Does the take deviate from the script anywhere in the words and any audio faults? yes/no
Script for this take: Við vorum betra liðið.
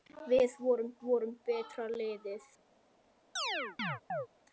yes